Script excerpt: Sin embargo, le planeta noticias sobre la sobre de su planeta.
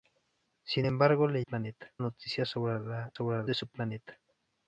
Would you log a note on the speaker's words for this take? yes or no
no